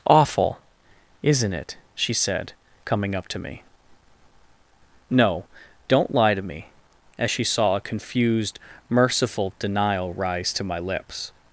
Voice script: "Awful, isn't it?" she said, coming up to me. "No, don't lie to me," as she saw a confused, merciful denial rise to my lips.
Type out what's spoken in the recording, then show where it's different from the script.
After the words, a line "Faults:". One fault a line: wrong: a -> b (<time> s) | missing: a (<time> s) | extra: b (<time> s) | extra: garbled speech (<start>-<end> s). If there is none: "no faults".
"Awful, isn't it?" she said, coming up to me. "No, don't lie to me," as she saw a confused, merciful denial rise to my lips.
Faults:
no faults